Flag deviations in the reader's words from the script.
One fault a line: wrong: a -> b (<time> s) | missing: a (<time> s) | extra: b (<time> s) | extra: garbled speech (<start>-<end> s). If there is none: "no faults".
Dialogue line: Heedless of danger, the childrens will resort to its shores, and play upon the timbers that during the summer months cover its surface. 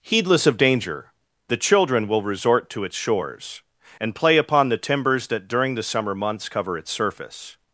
wrong: childrens -> children (1.6 s)